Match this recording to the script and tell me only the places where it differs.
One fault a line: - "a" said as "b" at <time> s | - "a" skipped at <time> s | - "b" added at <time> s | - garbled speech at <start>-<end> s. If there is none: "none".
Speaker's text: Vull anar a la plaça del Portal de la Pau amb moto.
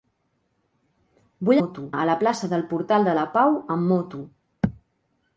- "anar" said as "moto" at 1.6 s